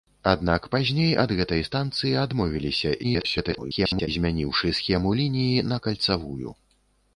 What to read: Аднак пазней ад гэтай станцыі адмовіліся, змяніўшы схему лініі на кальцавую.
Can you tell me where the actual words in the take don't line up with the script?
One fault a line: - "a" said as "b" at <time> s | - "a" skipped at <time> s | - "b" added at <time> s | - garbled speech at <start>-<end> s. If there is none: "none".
- garbled speech at 3.0-4.1 s